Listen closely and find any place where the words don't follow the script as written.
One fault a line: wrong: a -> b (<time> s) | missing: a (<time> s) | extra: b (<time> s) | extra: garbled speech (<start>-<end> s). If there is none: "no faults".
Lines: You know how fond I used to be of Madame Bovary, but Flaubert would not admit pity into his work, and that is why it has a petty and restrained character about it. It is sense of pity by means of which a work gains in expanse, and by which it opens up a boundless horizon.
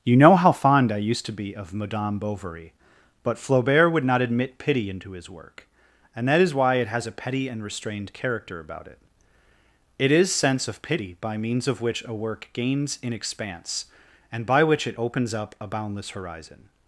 no faults